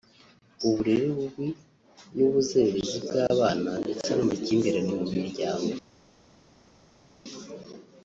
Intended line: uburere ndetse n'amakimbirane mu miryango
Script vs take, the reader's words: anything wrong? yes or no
yes